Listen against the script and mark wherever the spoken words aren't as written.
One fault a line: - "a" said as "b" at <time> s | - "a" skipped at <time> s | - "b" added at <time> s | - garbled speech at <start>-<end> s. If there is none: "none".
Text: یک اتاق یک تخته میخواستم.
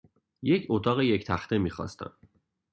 none